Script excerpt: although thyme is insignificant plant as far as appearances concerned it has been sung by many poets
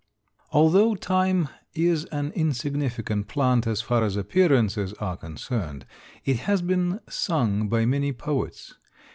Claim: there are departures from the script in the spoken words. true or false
true